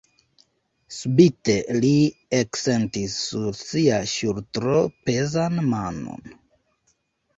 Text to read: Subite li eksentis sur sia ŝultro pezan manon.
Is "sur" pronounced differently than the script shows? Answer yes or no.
no